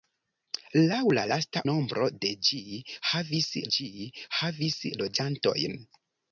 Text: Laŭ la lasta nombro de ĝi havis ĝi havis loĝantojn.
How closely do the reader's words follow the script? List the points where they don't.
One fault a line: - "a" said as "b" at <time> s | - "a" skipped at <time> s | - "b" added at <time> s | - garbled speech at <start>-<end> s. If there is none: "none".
none